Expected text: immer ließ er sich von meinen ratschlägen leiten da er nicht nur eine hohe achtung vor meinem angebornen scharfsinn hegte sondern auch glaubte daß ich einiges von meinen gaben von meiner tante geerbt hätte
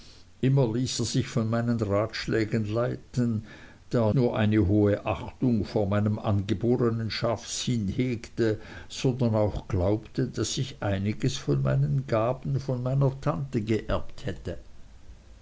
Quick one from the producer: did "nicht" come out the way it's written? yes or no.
no